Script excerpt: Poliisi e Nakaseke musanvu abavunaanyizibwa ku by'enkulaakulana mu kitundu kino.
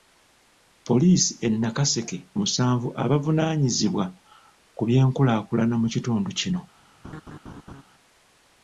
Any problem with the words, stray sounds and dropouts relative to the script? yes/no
yes